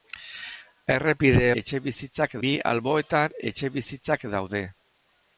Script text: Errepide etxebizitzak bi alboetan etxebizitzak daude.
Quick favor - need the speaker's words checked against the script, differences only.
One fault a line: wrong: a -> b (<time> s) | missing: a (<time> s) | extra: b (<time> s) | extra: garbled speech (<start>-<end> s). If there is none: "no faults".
no faults